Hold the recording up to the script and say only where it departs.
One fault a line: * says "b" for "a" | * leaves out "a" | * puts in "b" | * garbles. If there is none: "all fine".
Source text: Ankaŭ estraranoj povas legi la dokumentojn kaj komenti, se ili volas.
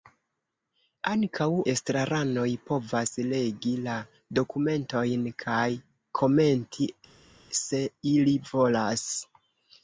all fine